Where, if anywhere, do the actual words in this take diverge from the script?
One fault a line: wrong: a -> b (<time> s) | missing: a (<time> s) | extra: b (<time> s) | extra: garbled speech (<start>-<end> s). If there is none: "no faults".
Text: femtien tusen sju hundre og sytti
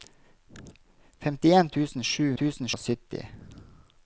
wrong: hundre -> tusen (2.4 s)